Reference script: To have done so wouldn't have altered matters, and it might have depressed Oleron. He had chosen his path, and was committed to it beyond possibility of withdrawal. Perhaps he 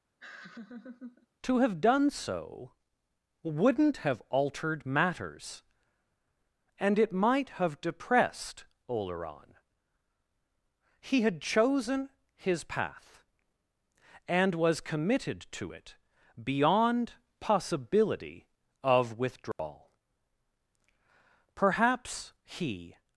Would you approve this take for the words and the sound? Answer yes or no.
no